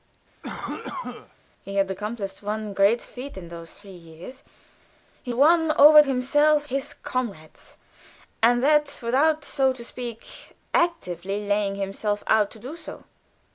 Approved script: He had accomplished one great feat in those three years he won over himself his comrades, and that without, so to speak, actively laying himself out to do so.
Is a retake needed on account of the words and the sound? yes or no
yes